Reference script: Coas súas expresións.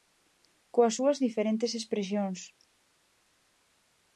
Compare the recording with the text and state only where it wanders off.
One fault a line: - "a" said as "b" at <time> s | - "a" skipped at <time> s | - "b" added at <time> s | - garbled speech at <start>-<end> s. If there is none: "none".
- "diferentes" added at 1.3 s